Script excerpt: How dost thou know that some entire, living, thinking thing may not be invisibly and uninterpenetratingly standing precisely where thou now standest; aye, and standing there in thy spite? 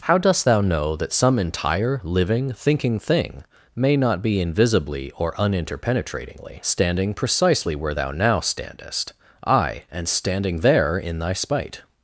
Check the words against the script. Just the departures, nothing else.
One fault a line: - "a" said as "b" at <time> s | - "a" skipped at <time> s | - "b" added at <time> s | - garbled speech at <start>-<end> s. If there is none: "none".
- "and" said as "or" at 5.2 s